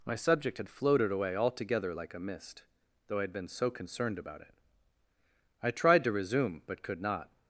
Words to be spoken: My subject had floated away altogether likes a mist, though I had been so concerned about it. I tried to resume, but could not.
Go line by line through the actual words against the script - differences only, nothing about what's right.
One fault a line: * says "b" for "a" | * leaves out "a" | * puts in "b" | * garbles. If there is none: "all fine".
* says "like" for "likes"